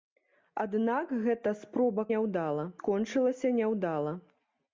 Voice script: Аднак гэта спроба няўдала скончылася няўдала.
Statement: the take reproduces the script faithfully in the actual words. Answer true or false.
true